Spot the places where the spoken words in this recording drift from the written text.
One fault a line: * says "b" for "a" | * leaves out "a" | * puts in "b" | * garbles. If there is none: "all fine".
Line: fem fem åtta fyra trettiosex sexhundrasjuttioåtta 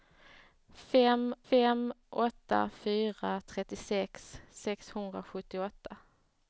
all fine